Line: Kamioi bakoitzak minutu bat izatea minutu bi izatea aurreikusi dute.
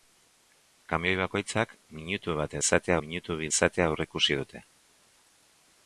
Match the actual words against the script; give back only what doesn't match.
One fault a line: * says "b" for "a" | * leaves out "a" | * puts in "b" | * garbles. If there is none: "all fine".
all fine